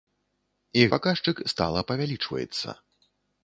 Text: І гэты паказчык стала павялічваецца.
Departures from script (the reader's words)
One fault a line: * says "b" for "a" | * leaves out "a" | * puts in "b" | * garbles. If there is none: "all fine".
* leaves out "гэты"